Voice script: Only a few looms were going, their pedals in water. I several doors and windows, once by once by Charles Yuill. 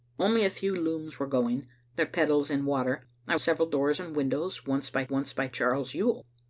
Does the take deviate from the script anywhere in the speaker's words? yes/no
no